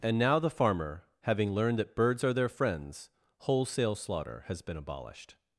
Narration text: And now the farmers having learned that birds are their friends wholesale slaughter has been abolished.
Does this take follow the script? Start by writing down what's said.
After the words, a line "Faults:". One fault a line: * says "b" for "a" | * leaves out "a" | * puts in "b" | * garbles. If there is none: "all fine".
And now the farmer having learned that birds are their friends wholesale slaughter has been abolished.
Faults:
* says "farmer" for "farmers"